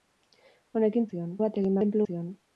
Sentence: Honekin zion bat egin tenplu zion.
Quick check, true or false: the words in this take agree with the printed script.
true